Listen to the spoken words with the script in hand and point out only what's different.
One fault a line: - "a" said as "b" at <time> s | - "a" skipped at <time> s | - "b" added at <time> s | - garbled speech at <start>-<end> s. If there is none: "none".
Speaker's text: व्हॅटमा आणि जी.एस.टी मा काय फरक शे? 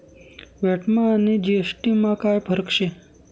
none